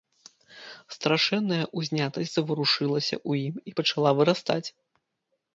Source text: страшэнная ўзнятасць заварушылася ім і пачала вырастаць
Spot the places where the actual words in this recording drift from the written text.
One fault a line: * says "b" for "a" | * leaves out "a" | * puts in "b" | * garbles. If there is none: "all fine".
* puts in "ў"